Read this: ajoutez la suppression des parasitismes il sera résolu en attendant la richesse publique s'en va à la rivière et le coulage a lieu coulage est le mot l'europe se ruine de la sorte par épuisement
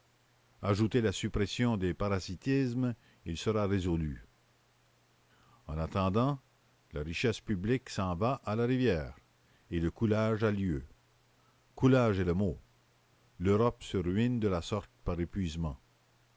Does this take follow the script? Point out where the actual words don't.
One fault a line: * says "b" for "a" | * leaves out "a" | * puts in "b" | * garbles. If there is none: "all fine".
all fine